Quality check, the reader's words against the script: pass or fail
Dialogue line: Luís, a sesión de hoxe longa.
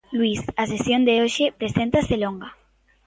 fail